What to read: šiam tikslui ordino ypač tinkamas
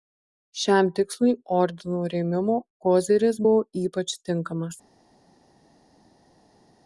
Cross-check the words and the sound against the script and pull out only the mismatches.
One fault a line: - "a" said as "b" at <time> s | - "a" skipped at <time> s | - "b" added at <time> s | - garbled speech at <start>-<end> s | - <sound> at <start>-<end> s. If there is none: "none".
- "rėmimo koziris buvo" added at 2.1 s